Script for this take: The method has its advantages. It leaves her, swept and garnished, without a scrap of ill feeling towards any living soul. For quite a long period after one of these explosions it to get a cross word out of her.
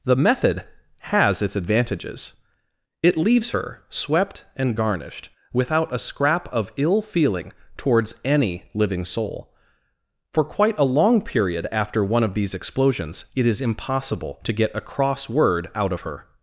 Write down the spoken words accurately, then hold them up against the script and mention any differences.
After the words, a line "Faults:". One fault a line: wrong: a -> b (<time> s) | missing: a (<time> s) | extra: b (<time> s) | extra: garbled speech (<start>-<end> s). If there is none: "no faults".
The method has its advantages. It leaves her, swept and garnished, without a scrap of ill feeling towards any living soul. For quite a long period after one of these explosions it is impossible to get a cross word out of her.
Faults:
extra: is impossible (13.5 s)